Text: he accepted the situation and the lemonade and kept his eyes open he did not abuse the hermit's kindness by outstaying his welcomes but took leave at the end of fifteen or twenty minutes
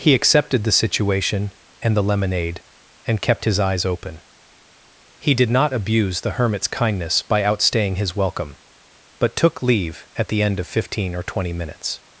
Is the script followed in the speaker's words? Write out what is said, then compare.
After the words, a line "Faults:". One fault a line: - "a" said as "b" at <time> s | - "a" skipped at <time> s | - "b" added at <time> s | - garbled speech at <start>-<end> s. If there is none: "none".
he accepted the situation and the lemonade and kept his eyes open he did not abuse the hermit's kindness by outstaying his welcome but took leave at the end of fifteen or twenty minutes
Faults:
- "welcomes" said as "welcome" at 8.2 s